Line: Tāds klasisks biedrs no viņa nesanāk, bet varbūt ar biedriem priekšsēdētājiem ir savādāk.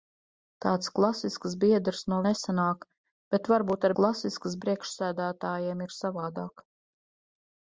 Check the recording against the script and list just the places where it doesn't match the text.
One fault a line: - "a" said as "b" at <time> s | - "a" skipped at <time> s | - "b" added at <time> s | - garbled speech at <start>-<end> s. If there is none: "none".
- "viņa" skipped at 2.2 s
- "biedriem" said as "klasisks" at 4.0 s